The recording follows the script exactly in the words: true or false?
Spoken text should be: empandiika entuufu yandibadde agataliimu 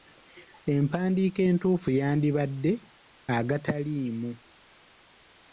true